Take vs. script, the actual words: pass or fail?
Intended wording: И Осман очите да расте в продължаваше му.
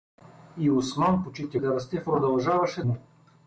pass